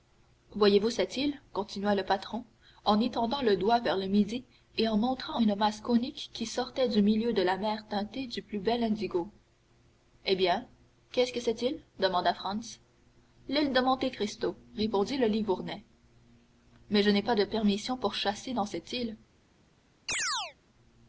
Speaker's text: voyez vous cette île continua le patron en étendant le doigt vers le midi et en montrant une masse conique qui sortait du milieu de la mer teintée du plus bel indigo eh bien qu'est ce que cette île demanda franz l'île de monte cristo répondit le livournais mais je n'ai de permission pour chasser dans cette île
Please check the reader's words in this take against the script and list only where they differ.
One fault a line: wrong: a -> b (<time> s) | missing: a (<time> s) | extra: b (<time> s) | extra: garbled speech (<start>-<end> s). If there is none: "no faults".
extra: pas (17.2 s)